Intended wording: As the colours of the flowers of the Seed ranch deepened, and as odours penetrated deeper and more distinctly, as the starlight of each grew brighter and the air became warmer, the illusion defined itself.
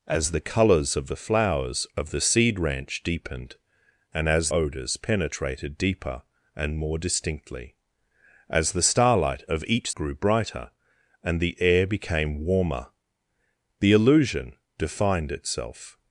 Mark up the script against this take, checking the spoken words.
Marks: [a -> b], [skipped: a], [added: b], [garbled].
As the colours of the flowers of the Seed ranch deepened, and as odours penetrated deeper and more distinctly, as the starlight of each grew brighter and the air became warmer, the illusion defined itself.